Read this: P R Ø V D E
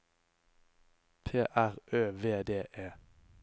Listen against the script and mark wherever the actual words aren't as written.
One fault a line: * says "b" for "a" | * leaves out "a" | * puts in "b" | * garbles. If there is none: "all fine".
all fine